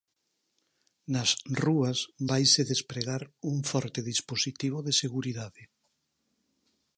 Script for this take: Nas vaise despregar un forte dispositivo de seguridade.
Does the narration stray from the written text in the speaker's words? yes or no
yes